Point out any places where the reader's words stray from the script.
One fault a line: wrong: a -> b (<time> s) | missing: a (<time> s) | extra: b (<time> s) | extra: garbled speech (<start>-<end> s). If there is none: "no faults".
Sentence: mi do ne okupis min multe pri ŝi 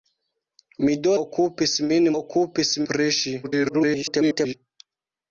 missing: ne (1.1 s)
wrong: multe -> okupis (2.1 s)
extra: garbled speech (3.4-4.5 s)